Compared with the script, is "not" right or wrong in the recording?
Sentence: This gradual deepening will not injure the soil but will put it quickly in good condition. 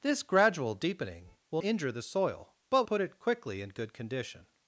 wrong